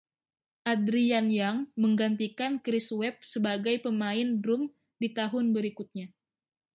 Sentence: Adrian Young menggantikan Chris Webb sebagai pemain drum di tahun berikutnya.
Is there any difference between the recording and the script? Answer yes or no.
no